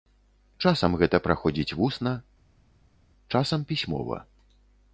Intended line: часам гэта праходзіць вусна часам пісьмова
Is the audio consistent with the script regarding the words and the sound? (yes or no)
yes